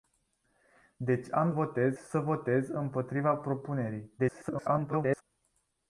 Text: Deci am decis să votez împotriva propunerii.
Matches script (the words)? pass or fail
fail